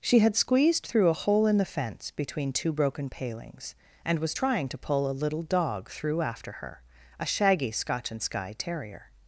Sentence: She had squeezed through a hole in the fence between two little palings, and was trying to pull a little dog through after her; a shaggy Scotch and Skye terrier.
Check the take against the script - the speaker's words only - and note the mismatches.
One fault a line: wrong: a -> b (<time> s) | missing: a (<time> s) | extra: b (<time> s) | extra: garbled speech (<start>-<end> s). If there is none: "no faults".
wrong: little -> broken (2.7 s)